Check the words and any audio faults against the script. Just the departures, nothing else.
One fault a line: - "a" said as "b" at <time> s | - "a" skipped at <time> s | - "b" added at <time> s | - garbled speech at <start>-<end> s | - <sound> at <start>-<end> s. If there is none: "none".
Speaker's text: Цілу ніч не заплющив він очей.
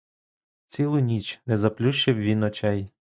none